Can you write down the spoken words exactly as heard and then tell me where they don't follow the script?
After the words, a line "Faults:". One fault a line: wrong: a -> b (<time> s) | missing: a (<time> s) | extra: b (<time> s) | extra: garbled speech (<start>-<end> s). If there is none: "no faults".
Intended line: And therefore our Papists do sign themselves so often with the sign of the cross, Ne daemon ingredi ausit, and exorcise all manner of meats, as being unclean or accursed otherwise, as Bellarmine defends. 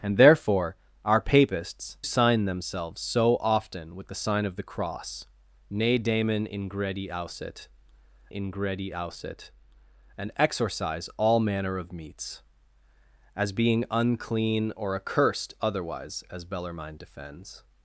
And therefore our Papists sign themselves so often with the sign of the cross, Ne daemon ingredi ausit ingredi ausit, and exorcise all manner of meats, as being unclean or accursed otherwise, as Bellarmine defends.
Faults:
missing: do (2.0 s)
extra: ingredi ausit (8.3 s)